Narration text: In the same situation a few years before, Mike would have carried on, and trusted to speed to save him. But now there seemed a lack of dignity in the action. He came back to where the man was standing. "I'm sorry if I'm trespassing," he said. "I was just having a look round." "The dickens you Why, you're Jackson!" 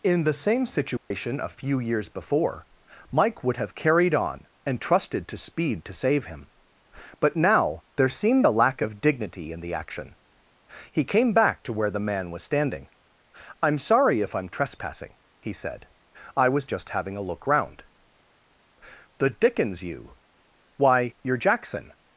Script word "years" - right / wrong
right